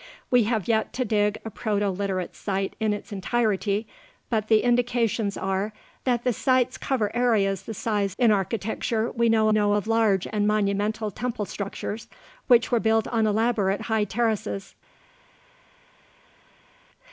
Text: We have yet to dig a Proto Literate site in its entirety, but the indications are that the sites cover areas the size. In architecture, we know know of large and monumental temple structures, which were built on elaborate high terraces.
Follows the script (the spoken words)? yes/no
yes